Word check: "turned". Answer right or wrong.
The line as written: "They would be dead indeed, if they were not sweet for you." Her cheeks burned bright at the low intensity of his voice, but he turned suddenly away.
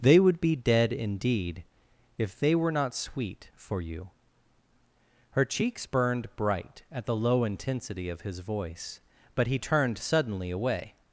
right